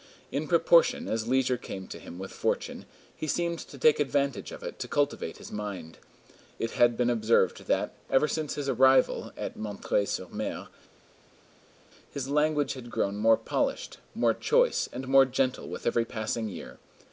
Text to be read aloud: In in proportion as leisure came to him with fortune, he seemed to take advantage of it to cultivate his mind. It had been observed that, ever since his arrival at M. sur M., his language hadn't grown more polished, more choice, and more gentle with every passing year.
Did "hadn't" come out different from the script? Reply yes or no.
yes